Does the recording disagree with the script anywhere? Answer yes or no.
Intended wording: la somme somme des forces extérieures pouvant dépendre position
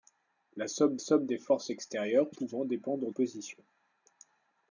no